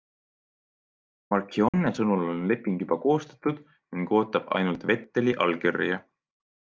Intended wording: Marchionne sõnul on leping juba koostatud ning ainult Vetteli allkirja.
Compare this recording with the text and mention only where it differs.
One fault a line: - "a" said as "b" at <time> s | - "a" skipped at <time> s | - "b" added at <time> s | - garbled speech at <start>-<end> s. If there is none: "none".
- "ootab" added at 4.2 s